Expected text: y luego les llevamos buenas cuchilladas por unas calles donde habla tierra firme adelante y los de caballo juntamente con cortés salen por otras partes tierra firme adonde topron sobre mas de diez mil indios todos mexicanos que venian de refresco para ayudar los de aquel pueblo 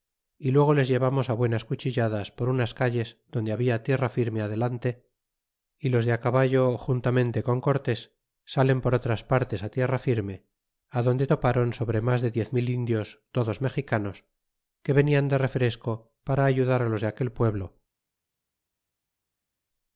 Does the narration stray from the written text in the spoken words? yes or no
no